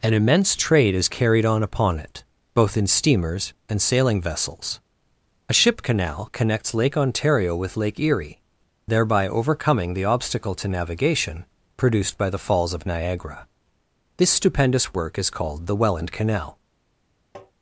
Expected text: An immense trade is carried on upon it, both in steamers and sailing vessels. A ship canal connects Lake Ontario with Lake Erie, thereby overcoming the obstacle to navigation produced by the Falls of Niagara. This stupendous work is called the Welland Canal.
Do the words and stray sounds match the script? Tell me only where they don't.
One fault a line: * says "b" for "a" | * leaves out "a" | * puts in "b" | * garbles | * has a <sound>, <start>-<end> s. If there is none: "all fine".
* has a tap, 17.3-17.5 s